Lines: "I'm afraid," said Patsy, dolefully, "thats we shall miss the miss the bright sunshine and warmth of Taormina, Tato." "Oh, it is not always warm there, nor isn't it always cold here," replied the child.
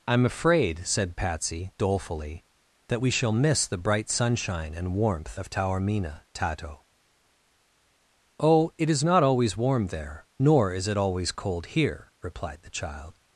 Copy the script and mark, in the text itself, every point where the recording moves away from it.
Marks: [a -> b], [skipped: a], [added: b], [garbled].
"I'm afraid," said Patsy, dolefully, ["thats -> that] we shall miss the [skipped: miss the] bright sunshine and warmth of Taormina, Tato." "Oh, it is not always warm there, nor [isn't -> is] it always cold here," replied the child.